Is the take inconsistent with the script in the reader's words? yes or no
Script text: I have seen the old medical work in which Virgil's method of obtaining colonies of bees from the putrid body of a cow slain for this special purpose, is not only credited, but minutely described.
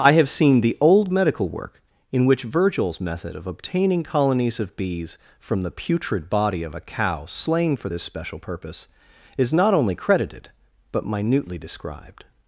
no